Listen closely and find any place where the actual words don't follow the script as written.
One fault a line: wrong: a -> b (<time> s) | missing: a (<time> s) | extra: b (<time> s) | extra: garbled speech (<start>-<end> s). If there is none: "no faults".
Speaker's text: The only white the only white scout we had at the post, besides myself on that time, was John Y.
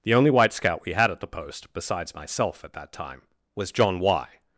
missing: the only white (0.5 s)
wrong: on -> at (2.6 s)